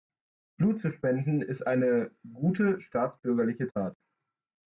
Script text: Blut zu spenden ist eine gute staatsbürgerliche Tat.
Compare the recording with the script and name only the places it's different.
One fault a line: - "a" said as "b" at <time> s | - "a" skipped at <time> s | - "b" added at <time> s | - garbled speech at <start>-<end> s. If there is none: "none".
none